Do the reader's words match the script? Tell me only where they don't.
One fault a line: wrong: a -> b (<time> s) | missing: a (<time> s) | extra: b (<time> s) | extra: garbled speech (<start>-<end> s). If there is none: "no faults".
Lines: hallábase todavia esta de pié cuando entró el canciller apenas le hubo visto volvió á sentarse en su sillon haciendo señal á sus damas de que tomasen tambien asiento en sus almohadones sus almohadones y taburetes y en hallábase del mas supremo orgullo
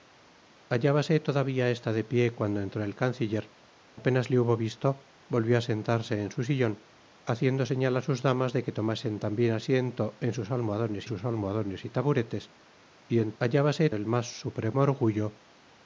no faults